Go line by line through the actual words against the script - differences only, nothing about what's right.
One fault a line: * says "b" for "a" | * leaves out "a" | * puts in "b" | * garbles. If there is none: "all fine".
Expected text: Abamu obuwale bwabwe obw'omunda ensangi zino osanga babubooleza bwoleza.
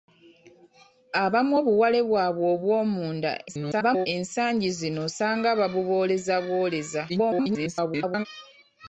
* garbles
* garbles